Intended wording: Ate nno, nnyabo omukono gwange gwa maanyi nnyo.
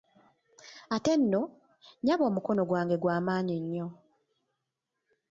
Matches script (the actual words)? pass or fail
pass